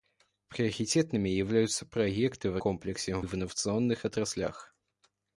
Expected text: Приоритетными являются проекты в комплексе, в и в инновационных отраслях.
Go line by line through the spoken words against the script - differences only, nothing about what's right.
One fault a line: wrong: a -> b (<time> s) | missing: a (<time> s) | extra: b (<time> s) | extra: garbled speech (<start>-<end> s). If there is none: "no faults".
no faults